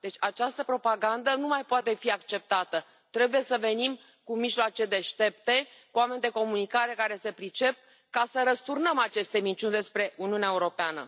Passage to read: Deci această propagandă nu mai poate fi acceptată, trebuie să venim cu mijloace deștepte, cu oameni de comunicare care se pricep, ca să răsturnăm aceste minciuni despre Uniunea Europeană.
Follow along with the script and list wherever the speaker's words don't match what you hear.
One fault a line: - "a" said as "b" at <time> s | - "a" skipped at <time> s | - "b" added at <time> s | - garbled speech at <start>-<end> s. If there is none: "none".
none